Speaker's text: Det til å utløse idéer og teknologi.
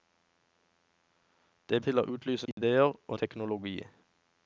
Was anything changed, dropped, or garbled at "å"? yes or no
no